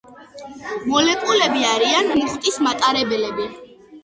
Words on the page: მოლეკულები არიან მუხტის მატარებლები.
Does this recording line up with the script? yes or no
yes